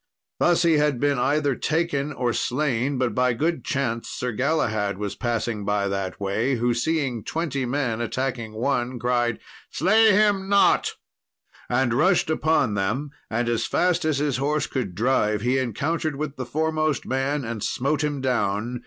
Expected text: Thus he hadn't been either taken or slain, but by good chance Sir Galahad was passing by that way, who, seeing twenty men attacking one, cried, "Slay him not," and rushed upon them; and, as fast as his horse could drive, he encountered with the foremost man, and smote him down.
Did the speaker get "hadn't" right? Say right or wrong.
wrong